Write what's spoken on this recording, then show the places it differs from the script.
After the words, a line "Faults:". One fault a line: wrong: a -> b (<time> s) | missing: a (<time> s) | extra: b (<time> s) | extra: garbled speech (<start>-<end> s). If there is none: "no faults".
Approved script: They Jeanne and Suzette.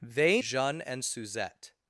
They Jeanne and Suzette.
Faults:
no faults